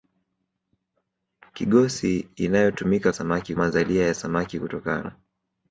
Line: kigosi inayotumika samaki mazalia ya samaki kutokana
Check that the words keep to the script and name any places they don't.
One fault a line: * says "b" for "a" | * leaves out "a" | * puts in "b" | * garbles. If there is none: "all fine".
all fine